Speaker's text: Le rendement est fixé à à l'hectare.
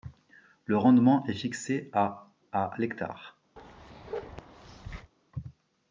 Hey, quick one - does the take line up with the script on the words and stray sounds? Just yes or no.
no